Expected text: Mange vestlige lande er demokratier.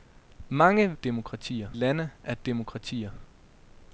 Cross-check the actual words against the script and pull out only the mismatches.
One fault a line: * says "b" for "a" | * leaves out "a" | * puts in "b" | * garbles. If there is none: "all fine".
* says "demokratier" for "vestlige"